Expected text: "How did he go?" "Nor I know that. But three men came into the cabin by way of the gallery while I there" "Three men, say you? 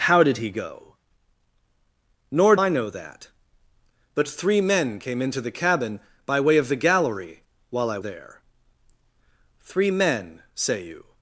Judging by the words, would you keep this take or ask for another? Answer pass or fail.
pass